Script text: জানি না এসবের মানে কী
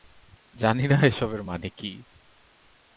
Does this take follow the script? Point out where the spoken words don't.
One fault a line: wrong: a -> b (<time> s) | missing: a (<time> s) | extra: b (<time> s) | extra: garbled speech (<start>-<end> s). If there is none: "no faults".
no faults